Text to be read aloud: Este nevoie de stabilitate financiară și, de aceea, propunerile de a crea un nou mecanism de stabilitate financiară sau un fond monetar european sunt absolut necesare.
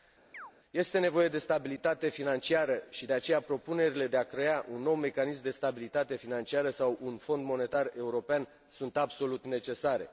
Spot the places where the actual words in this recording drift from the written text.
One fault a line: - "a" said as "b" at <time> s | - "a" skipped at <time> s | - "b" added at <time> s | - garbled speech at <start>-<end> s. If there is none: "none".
none